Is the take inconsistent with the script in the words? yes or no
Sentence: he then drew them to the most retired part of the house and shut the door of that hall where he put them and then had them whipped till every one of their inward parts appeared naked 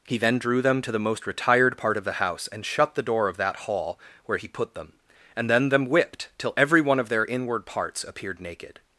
yes